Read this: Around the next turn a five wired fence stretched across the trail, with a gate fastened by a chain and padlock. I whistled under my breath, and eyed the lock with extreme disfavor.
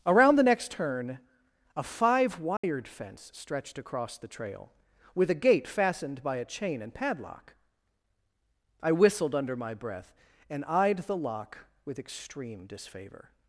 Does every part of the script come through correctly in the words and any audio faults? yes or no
no